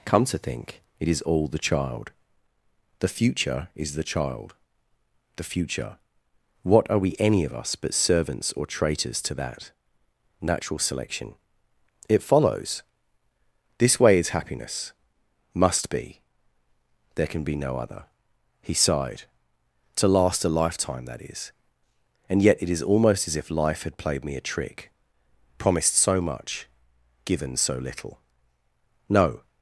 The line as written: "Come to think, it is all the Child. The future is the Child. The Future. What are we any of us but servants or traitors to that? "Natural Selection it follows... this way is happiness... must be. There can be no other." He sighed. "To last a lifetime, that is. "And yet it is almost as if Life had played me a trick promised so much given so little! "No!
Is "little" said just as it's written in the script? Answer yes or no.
yes